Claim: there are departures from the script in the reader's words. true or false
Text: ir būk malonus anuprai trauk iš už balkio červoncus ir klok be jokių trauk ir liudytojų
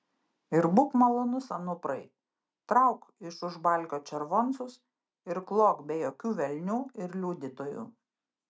true